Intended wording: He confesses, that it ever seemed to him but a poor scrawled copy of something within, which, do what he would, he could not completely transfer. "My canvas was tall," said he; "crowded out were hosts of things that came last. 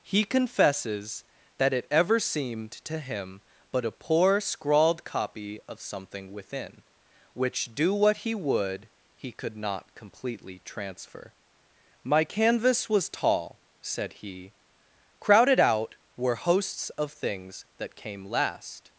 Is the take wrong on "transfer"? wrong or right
right